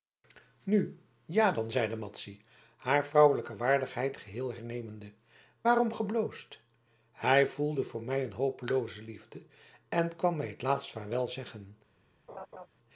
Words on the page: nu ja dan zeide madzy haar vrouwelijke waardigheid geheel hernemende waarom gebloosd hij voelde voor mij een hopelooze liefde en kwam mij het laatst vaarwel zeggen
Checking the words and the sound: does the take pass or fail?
fail